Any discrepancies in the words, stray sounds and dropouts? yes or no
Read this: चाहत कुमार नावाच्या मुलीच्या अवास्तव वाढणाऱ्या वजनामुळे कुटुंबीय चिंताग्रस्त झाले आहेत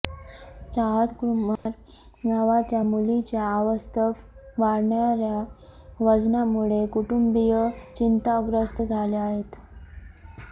yes